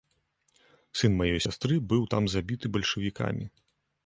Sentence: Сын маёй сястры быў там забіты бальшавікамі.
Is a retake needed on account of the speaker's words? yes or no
no